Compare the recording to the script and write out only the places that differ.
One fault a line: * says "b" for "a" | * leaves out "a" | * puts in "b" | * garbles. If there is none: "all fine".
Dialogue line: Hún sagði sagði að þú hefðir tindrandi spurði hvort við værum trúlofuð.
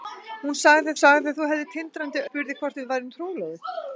all fine